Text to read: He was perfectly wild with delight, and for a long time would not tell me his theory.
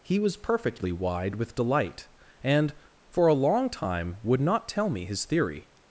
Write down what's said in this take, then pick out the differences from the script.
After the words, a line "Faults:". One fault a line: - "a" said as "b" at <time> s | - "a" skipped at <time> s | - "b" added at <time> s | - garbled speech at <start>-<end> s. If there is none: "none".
He was perfectly wide with delight, and for a long time would not tell me his theory.
Faults:
- "wild" said as "wide" at 0.9 s